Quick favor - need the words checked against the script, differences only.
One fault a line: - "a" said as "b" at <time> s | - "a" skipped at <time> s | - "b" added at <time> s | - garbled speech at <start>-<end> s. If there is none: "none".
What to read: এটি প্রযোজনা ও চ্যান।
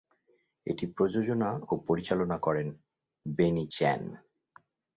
- "পরিচালনা করেন বেনি" added at 1.9 s